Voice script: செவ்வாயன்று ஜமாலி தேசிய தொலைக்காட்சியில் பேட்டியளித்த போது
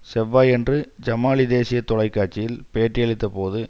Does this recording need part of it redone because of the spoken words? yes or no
no